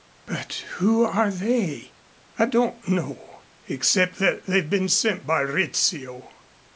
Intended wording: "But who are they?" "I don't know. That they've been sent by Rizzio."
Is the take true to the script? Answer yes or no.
no